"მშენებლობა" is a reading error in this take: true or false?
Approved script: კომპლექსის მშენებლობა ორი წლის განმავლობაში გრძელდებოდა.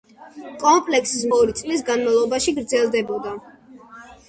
true